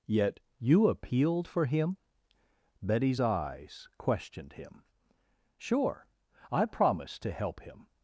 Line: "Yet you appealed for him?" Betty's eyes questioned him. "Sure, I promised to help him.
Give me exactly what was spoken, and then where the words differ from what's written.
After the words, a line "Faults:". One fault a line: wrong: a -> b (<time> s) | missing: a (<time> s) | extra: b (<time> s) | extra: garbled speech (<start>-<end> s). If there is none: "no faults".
"Yet you appealed for him?" Betty's eyes questioned him. "Sure, I promised to help him.
Faults:
no faults